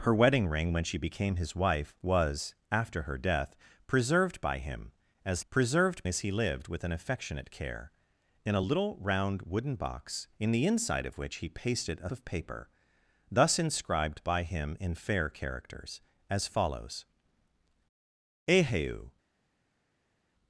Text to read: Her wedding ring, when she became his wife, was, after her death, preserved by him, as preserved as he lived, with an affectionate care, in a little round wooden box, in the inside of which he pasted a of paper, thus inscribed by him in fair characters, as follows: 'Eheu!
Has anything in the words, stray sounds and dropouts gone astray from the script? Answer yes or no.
no